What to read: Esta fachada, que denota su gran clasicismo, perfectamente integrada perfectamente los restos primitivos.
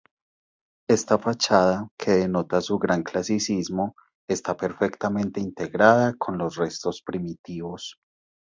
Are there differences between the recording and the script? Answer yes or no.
yes